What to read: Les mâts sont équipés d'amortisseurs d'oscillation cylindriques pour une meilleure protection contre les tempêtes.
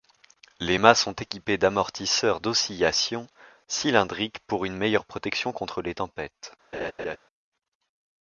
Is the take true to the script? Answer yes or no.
yes